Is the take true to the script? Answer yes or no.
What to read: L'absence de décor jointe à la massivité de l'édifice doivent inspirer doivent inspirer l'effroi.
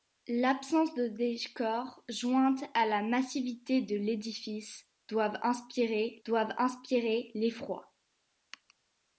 yes